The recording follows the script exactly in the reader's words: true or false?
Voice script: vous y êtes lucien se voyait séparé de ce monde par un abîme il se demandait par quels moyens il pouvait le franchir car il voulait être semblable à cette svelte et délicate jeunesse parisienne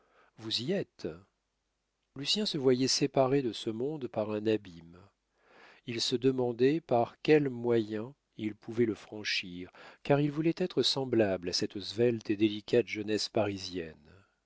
true